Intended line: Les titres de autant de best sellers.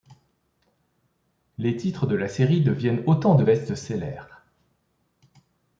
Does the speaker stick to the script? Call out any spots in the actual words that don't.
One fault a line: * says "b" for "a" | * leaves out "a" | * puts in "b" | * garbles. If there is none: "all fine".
* puts in "la série deviennent"